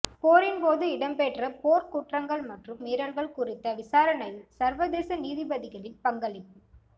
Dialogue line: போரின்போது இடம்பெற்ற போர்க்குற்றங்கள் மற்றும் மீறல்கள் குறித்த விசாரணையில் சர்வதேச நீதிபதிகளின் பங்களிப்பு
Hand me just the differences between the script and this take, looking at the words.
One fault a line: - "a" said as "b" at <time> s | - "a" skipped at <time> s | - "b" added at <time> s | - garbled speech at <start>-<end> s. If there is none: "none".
none